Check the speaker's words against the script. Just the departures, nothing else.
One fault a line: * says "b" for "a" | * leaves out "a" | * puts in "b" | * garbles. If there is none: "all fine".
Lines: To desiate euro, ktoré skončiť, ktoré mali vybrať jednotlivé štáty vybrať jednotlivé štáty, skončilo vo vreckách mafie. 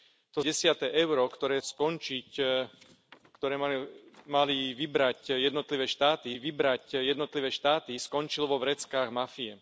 all fine